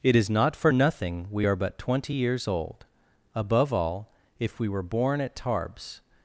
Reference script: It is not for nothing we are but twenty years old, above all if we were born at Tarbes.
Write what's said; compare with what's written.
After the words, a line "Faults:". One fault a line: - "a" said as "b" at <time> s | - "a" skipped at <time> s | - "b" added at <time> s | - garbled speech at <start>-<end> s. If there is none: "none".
It is not for nothing we are but twenty years old, above all if we were born at Tarbes.
Faults:
none